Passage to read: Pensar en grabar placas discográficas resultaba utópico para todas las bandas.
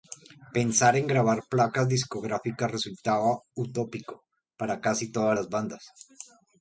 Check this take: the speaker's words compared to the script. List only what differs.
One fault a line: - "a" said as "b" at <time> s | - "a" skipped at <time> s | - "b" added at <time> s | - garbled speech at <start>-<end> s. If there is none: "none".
- "casi" added at 4.8 s